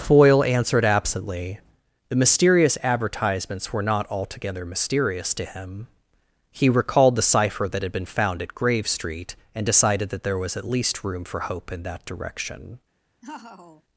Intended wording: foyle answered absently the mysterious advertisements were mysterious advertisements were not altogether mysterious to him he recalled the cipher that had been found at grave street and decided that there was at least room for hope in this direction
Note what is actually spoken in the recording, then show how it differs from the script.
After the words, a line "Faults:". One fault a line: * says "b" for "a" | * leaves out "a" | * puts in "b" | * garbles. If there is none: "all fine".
foyle answered absently the mysterious advertisements were not altogether mysterious to him he recalled the cipher that had been found at grave street and decided that there was at least room for hope in that direction
Faults:
* leaves out "mysterious advertisements were"
* says "that" for "this"